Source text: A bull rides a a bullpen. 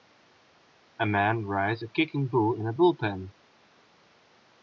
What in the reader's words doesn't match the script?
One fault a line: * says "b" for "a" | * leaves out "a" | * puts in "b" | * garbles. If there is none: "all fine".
* says "man" for "bull"
* puts in "kicking bull in"